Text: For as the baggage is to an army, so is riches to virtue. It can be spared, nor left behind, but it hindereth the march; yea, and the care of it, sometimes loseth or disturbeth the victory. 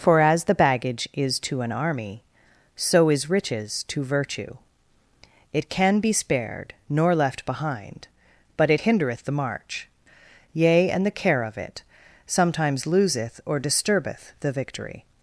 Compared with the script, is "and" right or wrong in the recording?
right